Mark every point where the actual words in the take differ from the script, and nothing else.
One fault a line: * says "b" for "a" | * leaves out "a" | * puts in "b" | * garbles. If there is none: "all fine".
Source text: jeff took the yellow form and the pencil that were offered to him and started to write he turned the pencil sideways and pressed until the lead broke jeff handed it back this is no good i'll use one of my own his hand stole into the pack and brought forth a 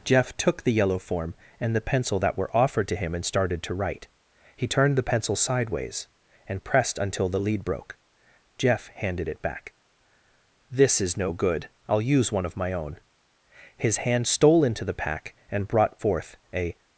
all fine